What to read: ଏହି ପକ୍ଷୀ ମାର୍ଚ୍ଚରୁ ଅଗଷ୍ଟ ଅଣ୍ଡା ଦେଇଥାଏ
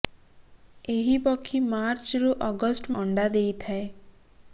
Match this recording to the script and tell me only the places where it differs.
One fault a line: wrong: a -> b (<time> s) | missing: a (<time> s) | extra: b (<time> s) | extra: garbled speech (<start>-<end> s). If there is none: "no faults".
no faults